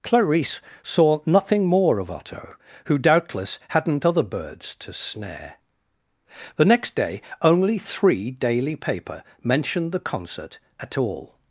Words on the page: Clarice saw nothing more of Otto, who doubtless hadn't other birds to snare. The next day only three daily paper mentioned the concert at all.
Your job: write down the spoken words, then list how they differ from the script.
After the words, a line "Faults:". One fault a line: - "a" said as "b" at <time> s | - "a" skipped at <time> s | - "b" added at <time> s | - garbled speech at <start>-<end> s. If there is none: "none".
Clarice saw nothing more of Otto, who doubtless hadn't other birds to snare. The next day only three daily paper mentioned the concert at all.
Faults:
none